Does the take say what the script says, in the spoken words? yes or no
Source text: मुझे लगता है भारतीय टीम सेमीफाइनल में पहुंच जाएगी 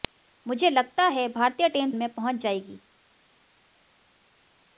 no